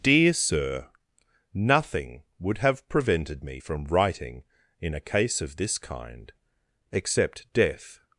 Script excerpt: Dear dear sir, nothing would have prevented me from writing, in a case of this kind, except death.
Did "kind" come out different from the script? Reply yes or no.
no